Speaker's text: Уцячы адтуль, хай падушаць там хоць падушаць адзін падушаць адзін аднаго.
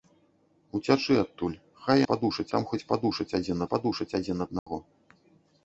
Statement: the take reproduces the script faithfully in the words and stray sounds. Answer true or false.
false